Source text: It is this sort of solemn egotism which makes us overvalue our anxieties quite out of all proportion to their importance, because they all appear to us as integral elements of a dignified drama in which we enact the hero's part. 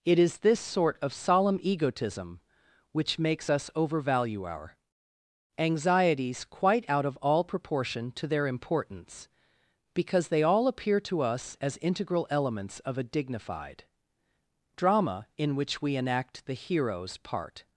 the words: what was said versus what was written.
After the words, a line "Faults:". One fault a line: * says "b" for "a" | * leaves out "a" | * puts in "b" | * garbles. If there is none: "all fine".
It is this sort of solemn egotism which makes us overvalue our anxieties quite out of all proportion to their importance, because they all appear to us as integral elements of a dignified drama in which we enact the hero's part.
Faults:
all fine